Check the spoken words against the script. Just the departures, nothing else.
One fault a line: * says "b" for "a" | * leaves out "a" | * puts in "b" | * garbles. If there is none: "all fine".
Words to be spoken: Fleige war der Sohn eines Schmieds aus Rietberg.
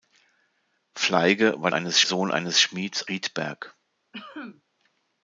* says "eines" for "der"
* leaves out "aus"